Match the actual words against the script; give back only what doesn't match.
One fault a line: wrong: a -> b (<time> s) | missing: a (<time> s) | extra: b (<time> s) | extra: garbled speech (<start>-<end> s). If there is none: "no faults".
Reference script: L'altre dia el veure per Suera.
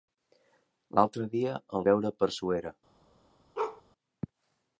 no faults